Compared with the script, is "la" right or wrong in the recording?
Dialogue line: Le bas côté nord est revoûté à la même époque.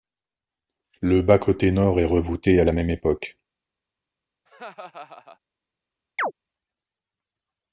right